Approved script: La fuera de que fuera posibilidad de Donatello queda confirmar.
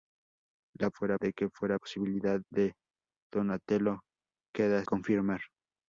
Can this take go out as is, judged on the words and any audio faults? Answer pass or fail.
pass